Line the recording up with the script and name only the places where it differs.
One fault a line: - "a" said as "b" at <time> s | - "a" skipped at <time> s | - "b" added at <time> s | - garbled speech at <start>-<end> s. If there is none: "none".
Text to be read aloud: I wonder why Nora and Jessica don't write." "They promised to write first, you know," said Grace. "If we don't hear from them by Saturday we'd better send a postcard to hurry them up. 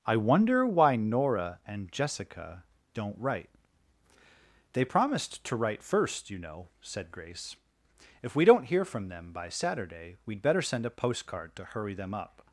none